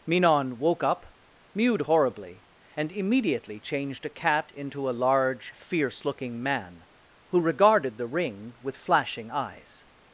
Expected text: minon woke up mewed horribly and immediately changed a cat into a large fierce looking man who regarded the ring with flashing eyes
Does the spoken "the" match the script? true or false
true